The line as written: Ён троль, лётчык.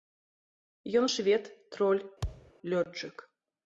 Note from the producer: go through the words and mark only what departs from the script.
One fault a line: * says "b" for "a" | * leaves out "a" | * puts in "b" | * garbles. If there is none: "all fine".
* puts in "швед"